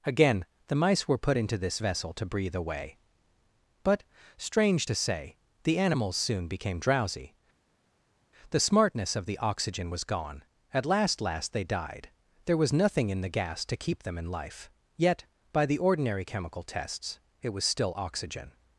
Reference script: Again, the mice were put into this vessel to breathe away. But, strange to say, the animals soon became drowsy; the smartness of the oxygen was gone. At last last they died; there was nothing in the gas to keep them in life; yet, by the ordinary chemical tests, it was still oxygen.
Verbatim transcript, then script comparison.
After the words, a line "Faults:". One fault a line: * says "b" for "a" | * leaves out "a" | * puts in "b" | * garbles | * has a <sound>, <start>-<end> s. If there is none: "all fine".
Again, the mice were put into this vessel to breathe away. But, strange to say, the animals soon became drowsy; the smartness of the oxygen was gone. At last last they died; there was nothing in the gas to keep them in life; yet, by the ordinary chemical tests, it was still oxygen.
Faults:
all fine